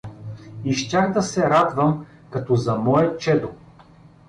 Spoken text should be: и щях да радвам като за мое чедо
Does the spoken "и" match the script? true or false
true